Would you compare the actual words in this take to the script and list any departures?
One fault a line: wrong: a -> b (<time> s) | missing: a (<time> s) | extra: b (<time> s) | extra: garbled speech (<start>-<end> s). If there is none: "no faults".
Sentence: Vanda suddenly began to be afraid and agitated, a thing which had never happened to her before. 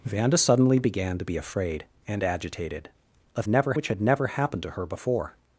wrong: thing -> never (3.5 s)